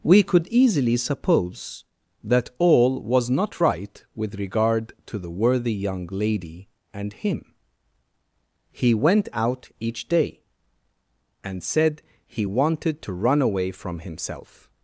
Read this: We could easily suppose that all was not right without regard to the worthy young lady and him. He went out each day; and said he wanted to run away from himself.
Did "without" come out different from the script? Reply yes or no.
yes